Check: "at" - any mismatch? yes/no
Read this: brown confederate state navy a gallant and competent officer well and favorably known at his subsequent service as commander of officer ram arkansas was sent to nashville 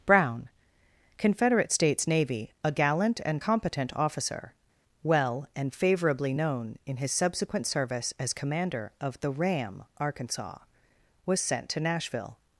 yes